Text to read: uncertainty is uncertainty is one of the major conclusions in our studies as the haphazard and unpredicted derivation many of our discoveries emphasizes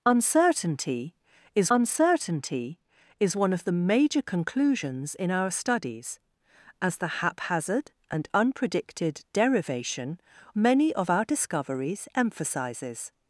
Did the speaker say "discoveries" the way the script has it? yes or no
yes